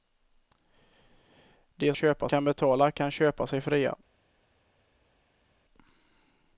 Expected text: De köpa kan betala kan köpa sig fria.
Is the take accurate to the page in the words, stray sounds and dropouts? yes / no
yes